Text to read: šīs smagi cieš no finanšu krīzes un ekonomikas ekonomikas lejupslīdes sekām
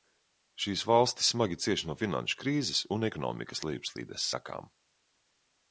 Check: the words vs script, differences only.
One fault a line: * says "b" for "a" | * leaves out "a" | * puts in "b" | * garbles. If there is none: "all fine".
* puts in "valstis"
* leaves out "ekonomikas"